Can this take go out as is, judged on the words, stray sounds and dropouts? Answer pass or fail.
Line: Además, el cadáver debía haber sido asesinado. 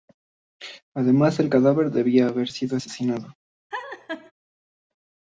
fail